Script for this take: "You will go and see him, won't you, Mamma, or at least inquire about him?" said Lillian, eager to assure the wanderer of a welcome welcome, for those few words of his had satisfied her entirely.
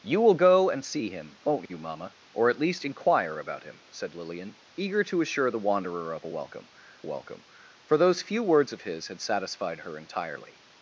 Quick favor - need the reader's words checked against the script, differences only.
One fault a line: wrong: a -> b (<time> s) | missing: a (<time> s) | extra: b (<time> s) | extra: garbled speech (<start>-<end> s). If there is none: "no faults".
no faults